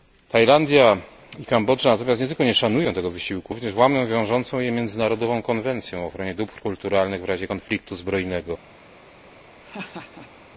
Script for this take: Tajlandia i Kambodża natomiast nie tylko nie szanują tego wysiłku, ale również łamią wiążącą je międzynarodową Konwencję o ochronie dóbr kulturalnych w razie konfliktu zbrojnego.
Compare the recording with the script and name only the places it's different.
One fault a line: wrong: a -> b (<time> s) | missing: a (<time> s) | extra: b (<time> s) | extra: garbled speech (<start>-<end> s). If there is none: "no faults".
missing: ale (3.5 s)